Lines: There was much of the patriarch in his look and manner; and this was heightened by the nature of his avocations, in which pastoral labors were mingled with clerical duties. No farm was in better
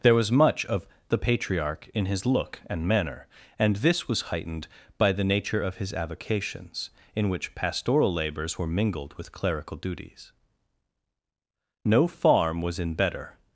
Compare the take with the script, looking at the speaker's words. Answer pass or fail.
pass